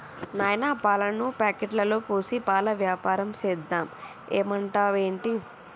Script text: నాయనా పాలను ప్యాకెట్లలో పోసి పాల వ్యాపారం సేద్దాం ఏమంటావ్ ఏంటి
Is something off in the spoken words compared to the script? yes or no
no